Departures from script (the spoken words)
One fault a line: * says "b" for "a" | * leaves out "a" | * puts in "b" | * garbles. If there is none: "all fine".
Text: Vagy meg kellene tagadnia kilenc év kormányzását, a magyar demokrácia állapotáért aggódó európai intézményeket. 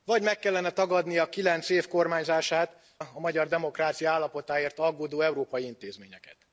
all fine